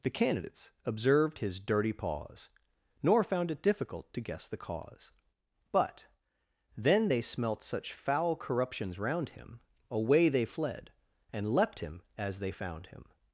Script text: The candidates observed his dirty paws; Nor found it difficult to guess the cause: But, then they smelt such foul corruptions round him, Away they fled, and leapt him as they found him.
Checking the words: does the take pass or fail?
pass